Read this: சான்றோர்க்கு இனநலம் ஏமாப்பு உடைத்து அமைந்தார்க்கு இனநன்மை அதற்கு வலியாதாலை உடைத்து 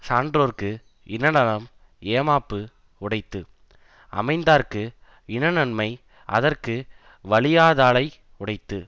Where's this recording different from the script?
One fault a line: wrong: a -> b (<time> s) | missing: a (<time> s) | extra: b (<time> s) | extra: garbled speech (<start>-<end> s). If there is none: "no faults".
no faults